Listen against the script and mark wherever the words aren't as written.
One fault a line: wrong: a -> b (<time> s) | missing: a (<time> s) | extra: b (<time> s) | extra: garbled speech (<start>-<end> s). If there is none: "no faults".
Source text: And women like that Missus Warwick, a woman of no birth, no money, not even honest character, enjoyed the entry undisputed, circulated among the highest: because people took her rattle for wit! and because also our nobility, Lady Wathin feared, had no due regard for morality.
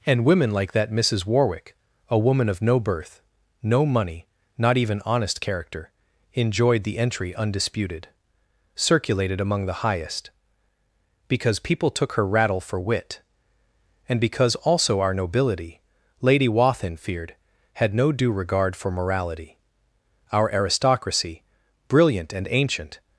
extra: Our aristocracy brilliant and ancient (20.3 s)